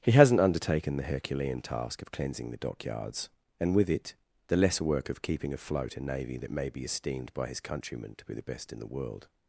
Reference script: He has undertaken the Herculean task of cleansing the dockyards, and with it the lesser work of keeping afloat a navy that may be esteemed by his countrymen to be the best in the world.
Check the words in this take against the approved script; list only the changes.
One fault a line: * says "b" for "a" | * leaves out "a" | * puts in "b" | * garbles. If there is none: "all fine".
* says "hasn't" for "has"